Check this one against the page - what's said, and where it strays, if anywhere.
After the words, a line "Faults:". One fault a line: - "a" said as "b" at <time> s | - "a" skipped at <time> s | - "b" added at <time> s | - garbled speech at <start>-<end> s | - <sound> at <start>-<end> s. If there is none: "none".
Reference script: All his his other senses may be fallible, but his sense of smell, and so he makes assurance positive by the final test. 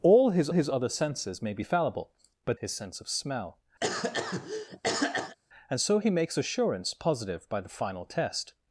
All his his other senses may be fallible, but his sense of smell, and so he makes assurance positive by the final test.
Faults:
- cough at 3.8-5.4 s